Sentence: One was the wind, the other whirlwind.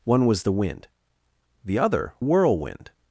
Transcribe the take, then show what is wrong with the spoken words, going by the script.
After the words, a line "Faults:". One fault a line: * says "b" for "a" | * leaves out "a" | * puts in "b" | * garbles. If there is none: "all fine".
One was the wind, the other whirlwind.
Faults:
all fine